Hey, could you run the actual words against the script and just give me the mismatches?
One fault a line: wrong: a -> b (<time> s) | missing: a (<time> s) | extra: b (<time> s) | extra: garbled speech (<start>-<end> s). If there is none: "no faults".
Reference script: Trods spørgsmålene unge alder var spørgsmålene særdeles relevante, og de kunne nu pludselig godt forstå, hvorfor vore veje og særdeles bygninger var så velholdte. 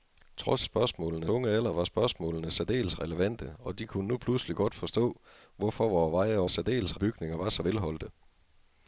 no faults